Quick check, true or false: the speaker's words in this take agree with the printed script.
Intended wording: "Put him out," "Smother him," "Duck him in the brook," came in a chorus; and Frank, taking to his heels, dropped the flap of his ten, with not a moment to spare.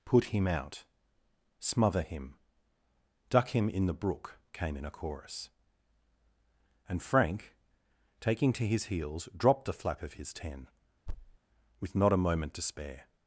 true